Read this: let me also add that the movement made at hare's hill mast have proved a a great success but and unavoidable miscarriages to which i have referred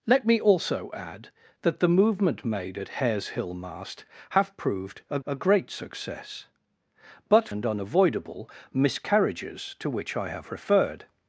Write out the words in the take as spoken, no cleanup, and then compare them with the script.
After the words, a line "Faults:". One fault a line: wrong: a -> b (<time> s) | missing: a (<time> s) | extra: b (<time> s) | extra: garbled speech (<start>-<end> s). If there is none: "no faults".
let me also add that the movement made at hare's hill mast have proved a a great success but and unavoidable miscarriages to which i have referred
Faults:
no faults